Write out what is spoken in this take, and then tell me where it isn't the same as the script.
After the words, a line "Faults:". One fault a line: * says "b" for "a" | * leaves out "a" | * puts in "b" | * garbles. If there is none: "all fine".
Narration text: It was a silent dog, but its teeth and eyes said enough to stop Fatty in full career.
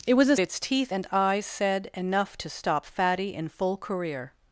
It was a its teeth and eyes said enough to stop Fatty in full career.
Faults:
* leaves out "silent dog but"